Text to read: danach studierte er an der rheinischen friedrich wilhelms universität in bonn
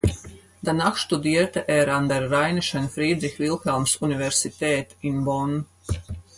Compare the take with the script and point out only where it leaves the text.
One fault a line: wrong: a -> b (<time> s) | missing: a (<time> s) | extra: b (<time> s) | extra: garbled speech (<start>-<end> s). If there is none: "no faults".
no faults